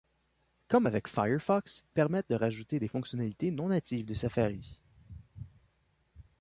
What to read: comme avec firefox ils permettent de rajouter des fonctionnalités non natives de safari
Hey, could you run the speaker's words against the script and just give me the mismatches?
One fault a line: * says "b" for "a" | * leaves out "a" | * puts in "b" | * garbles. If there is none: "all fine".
* leaves out "ils"